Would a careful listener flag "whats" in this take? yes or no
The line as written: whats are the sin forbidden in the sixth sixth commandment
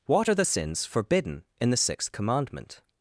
yes